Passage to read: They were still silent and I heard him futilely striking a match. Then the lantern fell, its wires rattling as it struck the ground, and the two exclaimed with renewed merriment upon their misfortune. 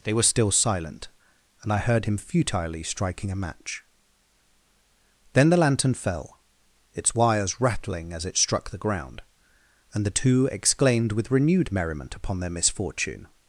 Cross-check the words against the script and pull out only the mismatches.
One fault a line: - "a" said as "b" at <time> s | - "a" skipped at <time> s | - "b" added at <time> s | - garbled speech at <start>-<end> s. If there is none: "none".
none